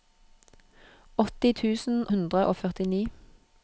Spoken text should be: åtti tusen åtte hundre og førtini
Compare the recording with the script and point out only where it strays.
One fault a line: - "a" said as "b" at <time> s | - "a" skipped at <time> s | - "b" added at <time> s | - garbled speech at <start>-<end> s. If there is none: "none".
- "åtte" skipped at 2.0 s